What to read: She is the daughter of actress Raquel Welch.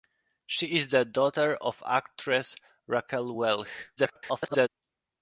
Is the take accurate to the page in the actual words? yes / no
no